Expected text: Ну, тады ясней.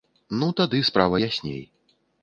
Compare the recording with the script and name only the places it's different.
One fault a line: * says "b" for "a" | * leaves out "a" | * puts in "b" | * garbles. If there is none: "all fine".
* puts in "справа"